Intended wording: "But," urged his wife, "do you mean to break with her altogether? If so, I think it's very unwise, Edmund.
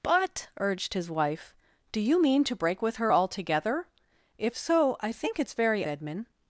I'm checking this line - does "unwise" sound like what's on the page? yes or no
no